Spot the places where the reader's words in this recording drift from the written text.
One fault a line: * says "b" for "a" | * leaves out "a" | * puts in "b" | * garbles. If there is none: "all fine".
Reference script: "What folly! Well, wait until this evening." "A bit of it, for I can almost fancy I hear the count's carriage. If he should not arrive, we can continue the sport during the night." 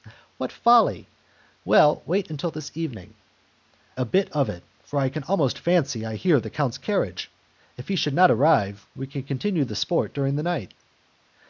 all fine